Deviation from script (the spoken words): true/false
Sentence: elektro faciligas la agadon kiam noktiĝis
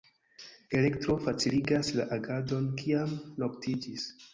false